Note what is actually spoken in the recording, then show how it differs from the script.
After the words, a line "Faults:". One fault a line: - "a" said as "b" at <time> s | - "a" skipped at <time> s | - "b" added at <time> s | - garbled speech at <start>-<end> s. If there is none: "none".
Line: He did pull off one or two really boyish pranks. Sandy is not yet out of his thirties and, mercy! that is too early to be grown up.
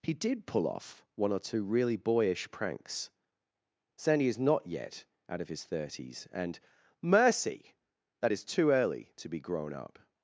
He did pull off one or two really boyish pranks. Sandy is not yet out of his thirties and, mercy! that is too early to be grown up.
Faults:
none